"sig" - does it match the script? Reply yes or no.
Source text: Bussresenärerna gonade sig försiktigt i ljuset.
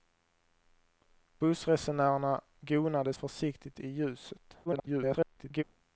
no